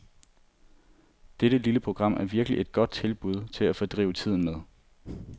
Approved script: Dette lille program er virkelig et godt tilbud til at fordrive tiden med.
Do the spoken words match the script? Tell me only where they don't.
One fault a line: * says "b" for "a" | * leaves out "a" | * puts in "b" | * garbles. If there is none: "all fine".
all fine